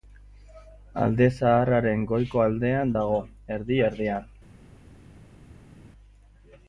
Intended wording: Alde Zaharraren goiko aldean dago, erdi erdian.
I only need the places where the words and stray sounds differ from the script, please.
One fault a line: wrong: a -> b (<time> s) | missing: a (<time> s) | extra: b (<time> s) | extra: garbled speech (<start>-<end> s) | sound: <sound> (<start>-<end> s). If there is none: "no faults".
no faults